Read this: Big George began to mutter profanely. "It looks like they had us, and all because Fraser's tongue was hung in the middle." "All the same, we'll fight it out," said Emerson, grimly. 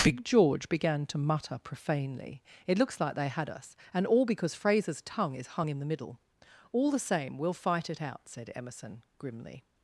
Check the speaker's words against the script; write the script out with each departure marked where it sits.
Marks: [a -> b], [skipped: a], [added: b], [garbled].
Big George began to mutter profanely. "It looks like they had us, and all because Fraser's tongue [was -> is] hung in the middle." "All the same, we'll fight it out," said Emerson, grimly.